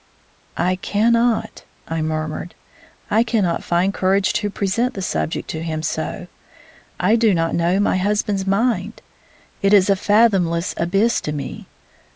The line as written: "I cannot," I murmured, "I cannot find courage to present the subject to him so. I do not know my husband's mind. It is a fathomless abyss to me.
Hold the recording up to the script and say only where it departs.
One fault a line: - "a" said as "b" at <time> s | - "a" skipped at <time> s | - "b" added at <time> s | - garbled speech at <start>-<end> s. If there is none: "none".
none